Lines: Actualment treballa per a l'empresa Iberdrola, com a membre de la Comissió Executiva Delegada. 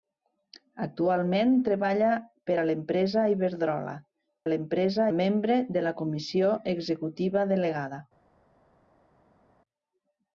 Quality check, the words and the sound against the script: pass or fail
fail